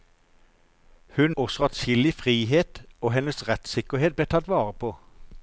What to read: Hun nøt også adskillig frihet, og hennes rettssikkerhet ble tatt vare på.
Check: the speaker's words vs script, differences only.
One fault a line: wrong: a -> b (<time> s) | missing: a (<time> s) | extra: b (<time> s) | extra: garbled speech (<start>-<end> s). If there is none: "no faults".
missing: nøt (1.3 s)